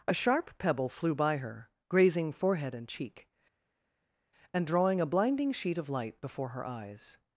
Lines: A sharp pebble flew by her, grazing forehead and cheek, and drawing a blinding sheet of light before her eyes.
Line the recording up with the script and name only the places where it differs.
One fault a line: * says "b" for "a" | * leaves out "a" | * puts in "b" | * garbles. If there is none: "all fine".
all fine